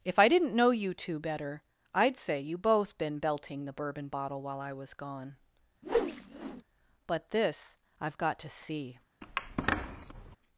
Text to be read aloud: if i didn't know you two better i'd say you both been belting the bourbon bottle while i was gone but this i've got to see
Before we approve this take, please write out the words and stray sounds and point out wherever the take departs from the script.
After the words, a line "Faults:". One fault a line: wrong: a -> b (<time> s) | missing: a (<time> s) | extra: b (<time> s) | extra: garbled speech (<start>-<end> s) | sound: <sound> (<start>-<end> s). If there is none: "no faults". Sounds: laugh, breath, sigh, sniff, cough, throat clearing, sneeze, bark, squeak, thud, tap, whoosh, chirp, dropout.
if i didn't know you two better i'd say you both been belting the bourbon bottle while i was gone but this i've got to see
Faults:
sound: whoosh (5.8-6.6 s)
sound: squeak (9.2-10.4 s)